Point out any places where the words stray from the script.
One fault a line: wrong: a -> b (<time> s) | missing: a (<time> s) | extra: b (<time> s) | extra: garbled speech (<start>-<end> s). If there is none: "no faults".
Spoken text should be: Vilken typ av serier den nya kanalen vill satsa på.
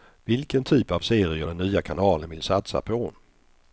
no faults